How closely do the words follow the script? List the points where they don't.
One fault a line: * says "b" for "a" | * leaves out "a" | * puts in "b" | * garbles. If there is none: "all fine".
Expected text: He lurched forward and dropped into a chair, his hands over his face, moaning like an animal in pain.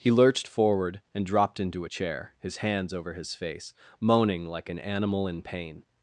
all fine